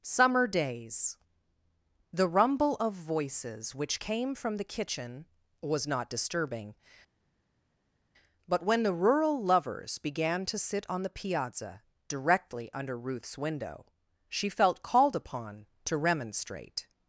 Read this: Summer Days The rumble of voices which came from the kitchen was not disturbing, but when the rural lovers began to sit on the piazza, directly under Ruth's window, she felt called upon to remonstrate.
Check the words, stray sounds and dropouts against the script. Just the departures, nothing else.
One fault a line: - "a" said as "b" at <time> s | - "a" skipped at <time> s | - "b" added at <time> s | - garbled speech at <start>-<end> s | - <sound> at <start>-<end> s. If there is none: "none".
none